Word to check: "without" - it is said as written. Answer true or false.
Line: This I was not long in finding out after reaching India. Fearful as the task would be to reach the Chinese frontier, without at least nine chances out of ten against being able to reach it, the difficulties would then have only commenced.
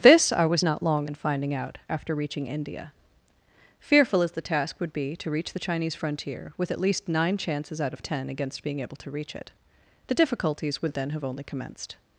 false